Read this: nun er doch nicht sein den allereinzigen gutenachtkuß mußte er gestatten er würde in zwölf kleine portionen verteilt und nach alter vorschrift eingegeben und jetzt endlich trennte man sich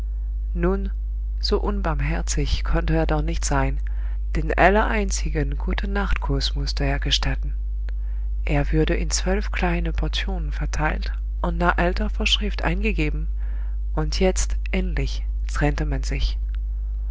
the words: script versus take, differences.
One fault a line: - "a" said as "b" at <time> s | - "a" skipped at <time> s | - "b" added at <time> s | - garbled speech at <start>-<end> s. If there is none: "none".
- "so unbarmherzig konnte" added at 1.4 s